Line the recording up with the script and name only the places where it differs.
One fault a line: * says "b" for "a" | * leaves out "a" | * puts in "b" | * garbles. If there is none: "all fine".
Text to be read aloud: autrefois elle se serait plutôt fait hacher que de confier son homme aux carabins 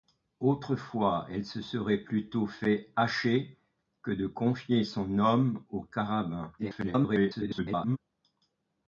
* garbles